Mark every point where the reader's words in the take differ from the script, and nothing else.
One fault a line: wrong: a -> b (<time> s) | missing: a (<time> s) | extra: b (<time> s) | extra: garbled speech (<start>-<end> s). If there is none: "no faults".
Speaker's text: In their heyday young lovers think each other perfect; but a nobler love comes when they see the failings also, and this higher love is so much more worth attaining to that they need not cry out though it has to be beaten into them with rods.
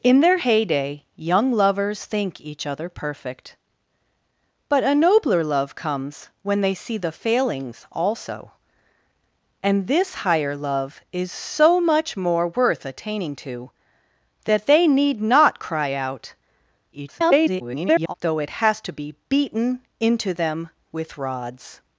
extra: garbled speech (16.9-18.1 s)